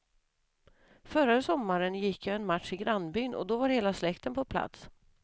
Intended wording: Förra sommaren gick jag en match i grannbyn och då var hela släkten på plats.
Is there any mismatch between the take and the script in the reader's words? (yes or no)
no